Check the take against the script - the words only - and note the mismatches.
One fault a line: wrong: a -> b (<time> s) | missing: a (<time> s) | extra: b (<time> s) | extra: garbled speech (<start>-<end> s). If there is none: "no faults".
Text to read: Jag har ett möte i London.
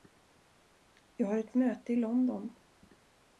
no faults